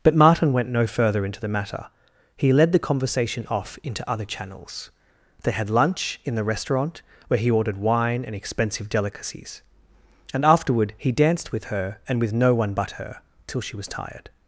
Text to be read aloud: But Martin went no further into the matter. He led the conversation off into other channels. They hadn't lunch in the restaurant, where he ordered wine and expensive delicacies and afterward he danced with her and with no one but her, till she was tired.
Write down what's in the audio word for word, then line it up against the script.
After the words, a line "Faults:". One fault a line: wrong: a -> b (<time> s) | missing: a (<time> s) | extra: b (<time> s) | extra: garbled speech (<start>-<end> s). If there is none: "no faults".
But Martin went no further into the matter. He led the conversation off into other channels. They had lunch in the restaurant, where he ordered wine and expensive delicacies and afterward he danced with her and with no one but her, till she was tired.
Faults:
wrong: hadn't -> had (5.5 s)